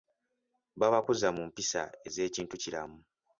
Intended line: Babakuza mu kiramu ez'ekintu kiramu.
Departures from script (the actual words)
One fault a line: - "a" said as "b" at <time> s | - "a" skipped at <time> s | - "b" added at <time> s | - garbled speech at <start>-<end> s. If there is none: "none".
- "kiramu" said as "mpisa" at 1.5 s